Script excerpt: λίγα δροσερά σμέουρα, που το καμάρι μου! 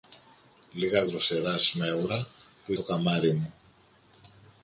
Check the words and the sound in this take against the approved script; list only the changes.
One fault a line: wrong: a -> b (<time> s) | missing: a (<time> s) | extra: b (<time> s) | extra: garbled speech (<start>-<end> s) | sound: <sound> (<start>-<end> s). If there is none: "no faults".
no faults